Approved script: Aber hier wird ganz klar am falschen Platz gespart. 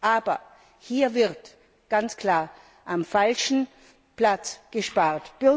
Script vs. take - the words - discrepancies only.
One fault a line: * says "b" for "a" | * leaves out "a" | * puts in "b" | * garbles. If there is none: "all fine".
all fine